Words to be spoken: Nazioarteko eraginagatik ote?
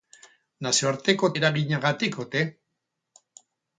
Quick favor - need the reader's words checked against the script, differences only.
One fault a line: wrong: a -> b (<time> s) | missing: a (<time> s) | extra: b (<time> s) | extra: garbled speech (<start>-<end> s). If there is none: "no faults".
no faults